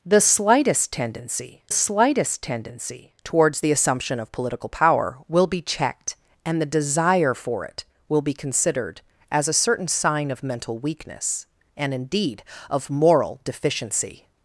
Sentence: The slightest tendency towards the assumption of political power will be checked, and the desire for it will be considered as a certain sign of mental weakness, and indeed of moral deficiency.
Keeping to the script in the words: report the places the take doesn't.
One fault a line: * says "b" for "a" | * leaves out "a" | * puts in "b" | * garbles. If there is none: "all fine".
* puts in "slightest tendency"